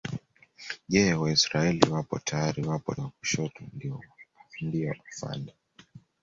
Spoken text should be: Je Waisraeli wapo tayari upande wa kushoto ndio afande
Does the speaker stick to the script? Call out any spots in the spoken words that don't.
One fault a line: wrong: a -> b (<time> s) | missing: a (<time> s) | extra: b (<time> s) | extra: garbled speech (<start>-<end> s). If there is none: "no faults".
wrong: upande -> wapo (2.6 s)